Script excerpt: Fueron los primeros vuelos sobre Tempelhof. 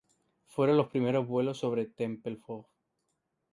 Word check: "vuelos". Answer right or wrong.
right